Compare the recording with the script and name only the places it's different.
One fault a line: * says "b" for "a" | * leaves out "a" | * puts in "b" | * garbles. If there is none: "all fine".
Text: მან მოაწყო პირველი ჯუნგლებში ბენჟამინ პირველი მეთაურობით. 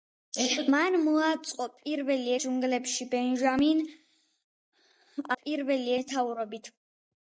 all fine